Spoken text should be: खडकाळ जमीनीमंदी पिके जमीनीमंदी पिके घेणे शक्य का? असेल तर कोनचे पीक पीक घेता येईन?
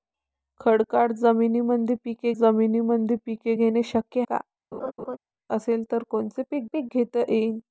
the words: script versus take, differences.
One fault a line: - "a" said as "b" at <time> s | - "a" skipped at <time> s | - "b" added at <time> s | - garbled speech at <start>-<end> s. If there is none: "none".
none